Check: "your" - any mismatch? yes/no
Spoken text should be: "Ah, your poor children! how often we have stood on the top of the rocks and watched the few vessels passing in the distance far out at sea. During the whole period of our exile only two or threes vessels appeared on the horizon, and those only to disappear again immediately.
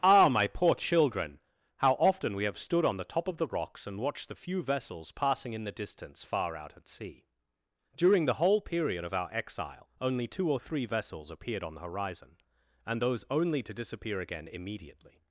yes